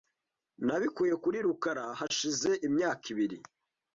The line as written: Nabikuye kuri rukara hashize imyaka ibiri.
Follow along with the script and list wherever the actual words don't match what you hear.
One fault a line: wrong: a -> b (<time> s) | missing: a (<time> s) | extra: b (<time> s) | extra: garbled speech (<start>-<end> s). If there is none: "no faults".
no faults